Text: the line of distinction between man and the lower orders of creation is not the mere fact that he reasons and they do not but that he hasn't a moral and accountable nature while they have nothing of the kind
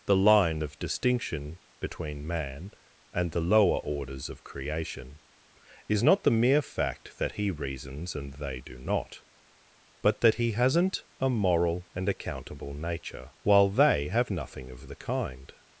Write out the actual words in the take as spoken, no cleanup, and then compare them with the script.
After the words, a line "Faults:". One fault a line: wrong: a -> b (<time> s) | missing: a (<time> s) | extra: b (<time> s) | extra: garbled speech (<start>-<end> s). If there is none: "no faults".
the line of distinction between man and the lower orders of creation is not the mere fact that he reasons and they do not but that he hasn't a moral and accountable nature while they have nothing of the kind
Faults:
no faults